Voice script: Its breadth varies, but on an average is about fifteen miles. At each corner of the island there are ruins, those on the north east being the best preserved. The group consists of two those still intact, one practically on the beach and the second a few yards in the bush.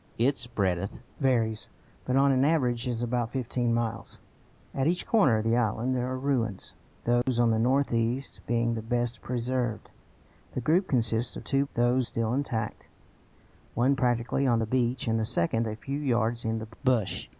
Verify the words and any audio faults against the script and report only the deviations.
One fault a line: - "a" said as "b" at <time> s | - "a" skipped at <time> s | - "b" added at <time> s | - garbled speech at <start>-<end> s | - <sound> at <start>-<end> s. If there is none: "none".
- dropout at 7.2-7.3 s